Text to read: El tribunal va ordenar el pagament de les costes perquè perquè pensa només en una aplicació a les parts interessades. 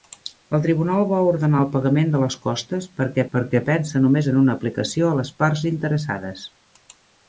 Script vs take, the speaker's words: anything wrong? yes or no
no